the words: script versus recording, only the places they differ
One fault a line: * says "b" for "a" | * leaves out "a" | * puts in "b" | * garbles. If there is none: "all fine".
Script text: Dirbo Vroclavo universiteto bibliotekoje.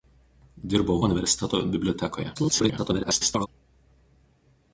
* leaves out "Vroclavo"
* garbles